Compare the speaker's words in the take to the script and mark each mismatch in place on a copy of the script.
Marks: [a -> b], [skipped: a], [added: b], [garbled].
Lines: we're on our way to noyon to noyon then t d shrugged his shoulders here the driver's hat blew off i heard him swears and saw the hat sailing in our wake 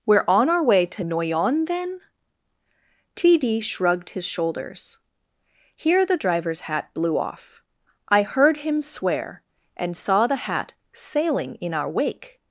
we're on our way to noyon [skipped: to noyon] then t d shrugged his shoulders here the driver's hat blew off i heard him [swears -> swear] and saw the hat sailing in our wake